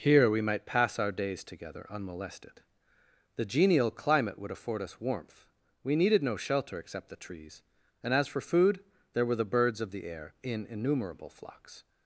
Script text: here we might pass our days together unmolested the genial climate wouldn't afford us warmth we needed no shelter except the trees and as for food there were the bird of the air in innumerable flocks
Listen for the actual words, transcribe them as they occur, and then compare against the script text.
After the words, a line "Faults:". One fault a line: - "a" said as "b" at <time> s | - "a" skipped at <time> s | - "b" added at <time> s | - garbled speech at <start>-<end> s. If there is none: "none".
here we might pass our days together unmolested the genial climate would afford us warmth we needed no shelter except the trees and as for food there were the birds of the air in innumerable flocks
Faults:
- "wouldn't" said as "would" at 4.4 s
- "bird" said as "birds" at 9.4 s